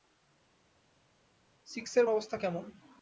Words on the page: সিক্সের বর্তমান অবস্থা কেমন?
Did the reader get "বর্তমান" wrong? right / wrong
wrong